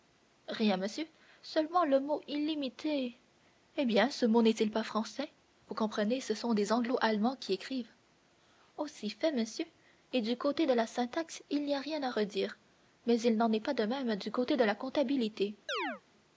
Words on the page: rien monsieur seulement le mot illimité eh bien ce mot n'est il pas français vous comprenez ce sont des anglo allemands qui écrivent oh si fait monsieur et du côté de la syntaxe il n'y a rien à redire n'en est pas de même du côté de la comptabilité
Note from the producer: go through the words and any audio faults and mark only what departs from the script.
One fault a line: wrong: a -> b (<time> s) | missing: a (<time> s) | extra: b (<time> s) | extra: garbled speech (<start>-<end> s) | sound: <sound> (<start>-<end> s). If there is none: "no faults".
extra: mais il (13.1 s)
sound: chirp (15.7-16.0 s)